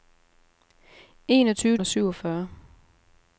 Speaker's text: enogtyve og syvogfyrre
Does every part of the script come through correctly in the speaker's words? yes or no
yes